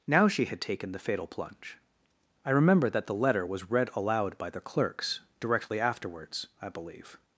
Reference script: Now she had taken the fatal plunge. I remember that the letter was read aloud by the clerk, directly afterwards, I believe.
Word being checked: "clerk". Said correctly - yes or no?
no